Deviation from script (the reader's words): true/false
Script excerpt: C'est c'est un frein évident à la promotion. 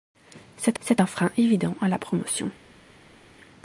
false